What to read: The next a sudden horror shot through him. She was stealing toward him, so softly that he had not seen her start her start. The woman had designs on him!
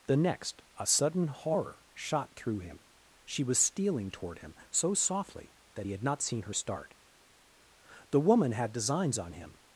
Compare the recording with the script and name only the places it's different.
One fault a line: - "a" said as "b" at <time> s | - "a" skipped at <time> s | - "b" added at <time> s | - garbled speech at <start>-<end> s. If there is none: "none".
- "her start" skipped at 6.9 s